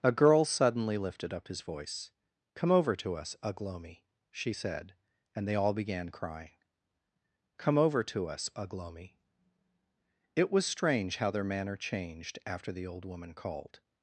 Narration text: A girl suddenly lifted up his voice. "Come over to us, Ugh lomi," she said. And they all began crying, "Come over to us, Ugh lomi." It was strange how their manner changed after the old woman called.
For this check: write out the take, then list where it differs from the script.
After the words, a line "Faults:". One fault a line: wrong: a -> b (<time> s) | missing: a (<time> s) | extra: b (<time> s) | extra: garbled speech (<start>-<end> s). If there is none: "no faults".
A girl suddenly lifted up his voice. "Come over to us, Ugh lomi," she said. And they all began crying, "Come over to us, Ugh lomi." It was strange how their manner changed after the old woman called.
Faults:
no faults